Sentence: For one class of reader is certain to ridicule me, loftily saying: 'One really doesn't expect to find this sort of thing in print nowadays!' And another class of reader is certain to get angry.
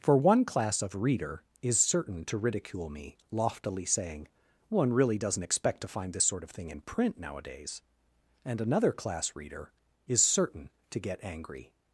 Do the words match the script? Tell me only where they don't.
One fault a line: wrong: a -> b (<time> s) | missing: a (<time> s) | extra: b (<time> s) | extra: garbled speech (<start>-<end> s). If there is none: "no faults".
missing: of (9.4 s)